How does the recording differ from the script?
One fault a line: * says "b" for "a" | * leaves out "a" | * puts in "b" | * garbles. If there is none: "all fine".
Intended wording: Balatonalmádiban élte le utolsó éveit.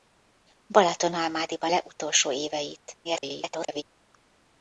* leaves out "élte"
* garbles